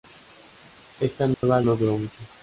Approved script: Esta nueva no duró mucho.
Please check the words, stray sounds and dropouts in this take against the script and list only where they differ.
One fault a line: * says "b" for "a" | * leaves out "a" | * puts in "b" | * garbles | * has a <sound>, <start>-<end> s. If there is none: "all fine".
* has a dropout, 1.3-1.4 s